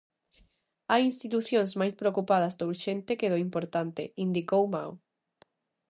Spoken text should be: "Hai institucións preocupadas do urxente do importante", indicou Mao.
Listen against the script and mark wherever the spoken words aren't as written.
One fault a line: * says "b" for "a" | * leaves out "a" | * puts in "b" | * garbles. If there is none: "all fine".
* puts in "máis"
* puts in "que"